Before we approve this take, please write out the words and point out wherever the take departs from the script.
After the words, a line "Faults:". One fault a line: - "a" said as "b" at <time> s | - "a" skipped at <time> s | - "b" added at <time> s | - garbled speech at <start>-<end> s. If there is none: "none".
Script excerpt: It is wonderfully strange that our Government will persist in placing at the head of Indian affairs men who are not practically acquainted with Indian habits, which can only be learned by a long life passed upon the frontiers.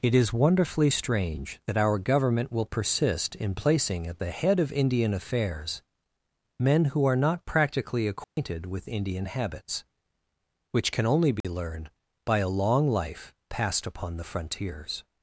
It is wonderfully strange that our Government will persist in placing at the head of Indian affairs men who are not practically acquainted with Indian habits, which can only be learned by a long life passed upon the frontiers.
Faults:
none